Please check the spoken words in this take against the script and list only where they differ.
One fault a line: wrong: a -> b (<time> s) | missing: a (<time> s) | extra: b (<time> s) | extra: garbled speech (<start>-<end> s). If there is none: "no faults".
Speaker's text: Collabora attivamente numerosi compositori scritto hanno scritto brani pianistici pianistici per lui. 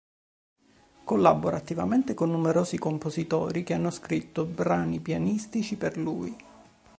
extra: con (2.1 s)
wrong: scritto -> che (3.6 s)
missing: pianistici (5.8 s)